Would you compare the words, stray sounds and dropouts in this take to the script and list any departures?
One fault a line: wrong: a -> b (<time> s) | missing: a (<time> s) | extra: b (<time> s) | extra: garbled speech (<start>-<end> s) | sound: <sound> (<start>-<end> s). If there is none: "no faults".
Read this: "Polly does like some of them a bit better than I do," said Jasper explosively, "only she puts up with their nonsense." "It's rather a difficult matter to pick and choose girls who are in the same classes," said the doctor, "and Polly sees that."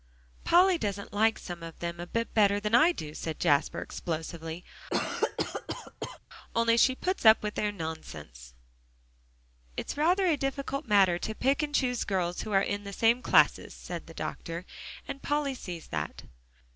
wrong: does -> doesn't (0.8 s)
sound: cough (4.9-6.2 s)